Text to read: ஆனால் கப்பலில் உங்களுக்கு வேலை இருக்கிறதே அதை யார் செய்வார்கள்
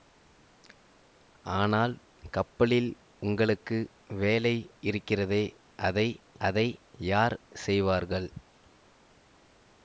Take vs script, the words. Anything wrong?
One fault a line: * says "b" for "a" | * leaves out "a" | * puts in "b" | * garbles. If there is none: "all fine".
* puts in "அதை"